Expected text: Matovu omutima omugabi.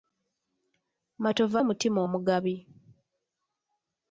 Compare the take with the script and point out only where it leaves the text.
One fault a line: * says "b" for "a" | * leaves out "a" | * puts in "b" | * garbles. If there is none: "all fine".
all fine